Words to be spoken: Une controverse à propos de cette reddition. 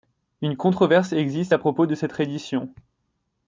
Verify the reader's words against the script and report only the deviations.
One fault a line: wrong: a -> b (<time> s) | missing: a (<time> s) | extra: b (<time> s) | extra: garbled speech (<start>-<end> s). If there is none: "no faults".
extra: existe (1.1 s)